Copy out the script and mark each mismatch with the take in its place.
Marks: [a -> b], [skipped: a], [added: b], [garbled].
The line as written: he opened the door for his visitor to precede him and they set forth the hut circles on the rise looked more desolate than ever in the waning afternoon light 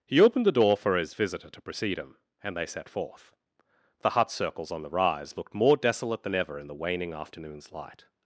he opened the door for his visitor to precede him and they set forth the hut circles on the rise looked more desolate than ever in the waning [afternoon -> afternoons] light